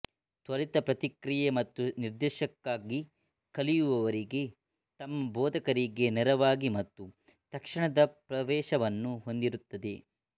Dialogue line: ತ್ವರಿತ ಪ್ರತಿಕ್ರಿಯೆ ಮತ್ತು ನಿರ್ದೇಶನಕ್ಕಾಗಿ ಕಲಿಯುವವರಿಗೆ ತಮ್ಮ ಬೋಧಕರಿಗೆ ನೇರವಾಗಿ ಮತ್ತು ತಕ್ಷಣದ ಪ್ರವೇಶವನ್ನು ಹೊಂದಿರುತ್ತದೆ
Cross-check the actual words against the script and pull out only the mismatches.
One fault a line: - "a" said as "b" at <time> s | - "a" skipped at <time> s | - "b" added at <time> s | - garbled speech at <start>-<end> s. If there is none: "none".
none